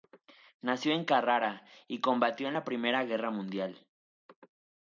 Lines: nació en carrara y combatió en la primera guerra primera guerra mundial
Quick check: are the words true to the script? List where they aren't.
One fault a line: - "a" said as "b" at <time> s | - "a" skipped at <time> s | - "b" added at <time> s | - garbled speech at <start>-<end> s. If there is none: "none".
- "primera guerra" skipped at 3.3 s